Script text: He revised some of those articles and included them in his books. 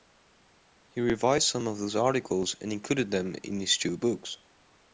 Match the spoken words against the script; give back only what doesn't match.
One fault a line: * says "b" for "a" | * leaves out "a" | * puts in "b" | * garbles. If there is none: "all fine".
* puts in "two"